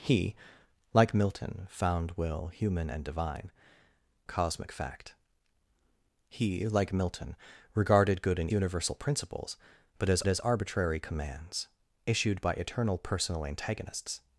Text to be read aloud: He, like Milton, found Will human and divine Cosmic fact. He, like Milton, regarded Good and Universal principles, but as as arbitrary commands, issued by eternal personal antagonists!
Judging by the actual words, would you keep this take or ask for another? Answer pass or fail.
pass